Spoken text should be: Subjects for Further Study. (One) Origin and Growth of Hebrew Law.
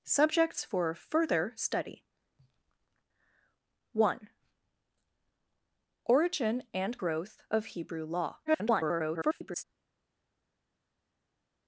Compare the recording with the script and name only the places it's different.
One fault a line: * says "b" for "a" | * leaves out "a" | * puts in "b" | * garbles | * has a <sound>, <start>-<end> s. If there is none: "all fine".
* garbles